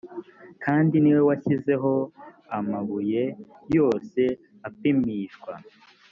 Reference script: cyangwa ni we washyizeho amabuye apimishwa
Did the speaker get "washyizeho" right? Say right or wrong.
right